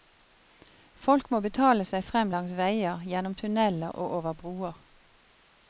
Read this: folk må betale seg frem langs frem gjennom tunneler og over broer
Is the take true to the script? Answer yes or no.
no